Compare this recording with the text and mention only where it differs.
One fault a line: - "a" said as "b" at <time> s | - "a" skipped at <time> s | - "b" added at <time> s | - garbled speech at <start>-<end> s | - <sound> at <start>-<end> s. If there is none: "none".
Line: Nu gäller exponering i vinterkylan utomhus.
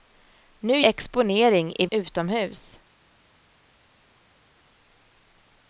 - "gäller" skipped at 0.8 s
- "vinterkylan" skipped at 1.9 s